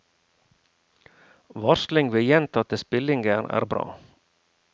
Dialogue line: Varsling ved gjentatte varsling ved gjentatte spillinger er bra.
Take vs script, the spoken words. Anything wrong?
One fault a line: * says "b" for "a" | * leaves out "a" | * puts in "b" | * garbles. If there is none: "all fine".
* leaves out "varsling ved gjentatte"